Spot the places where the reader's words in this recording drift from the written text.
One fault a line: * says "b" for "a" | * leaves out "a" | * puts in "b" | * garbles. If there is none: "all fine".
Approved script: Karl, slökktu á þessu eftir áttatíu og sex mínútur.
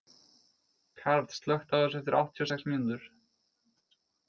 all fine